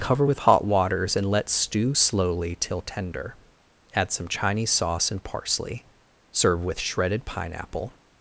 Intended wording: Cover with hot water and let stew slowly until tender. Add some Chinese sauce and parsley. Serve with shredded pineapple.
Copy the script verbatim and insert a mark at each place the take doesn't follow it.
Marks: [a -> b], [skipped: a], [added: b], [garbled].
Cover with hot [water -> waters] and let stew slowly [until -> till] tender. Add some Chinese sauce and parsley. Serve with shredded pineapple.